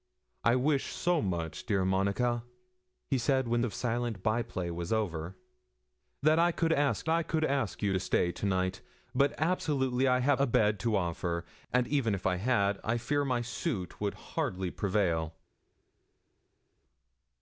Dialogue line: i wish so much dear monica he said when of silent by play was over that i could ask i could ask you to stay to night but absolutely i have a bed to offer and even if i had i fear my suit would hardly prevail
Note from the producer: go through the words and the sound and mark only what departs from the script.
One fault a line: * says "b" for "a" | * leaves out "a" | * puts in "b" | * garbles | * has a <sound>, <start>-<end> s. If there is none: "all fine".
all fine